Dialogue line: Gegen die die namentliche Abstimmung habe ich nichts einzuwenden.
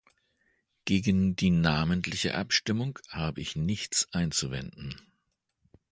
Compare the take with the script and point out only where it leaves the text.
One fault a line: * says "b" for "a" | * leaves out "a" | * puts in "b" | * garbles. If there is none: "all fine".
* leaves out "die"